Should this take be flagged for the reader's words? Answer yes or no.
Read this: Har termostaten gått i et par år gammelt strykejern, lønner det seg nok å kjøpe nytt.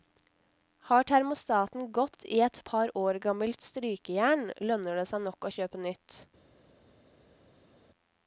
no